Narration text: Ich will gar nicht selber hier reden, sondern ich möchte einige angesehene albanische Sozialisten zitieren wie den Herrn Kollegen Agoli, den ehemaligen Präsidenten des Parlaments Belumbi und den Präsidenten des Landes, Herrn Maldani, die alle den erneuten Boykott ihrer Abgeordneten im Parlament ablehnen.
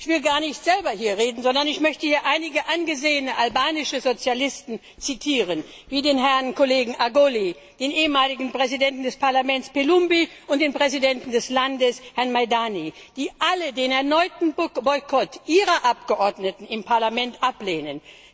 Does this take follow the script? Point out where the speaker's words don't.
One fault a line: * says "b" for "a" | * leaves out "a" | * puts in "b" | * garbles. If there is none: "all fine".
* puts in "hier"